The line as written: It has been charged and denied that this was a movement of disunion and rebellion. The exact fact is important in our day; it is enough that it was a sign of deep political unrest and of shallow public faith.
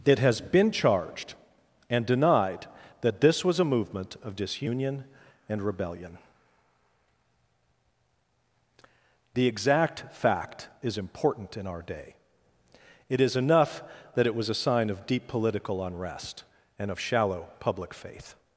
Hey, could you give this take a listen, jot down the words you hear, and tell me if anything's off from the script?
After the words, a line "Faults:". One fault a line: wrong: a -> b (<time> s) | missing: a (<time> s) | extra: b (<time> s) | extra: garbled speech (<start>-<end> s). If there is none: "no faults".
It has been charged and denied that this was a movement of disunion and rebellion. The exact fact is important in our day; it is enough that it was a sign of deep political unrest and of shallow public faith.
Faults:
no faults